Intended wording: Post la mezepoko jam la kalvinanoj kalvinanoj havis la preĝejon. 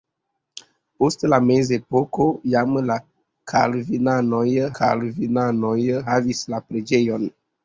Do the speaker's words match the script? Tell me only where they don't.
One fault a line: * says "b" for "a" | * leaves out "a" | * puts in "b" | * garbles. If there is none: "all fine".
all fine